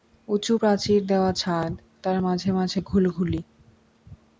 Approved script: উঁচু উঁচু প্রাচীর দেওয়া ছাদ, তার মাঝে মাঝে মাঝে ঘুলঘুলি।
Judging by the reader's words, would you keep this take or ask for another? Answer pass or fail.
fail